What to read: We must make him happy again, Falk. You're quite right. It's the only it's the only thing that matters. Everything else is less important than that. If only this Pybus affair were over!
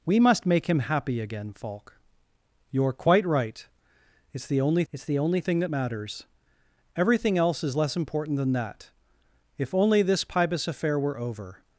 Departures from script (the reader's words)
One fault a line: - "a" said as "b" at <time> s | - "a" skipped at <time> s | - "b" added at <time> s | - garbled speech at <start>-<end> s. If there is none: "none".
none